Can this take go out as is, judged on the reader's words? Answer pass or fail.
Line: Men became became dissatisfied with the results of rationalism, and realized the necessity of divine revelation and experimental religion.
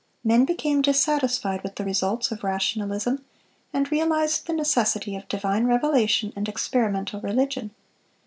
fail